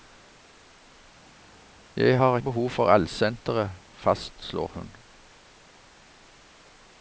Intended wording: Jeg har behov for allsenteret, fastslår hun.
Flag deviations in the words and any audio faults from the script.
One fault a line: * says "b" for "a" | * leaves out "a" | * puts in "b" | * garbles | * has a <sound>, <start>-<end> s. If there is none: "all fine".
all fine